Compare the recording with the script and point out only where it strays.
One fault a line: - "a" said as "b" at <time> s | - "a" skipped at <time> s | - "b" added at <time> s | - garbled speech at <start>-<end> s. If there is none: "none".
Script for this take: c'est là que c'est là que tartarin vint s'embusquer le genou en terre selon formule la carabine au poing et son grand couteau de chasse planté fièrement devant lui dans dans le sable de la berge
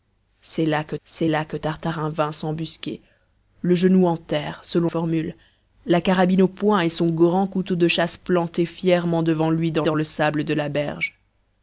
none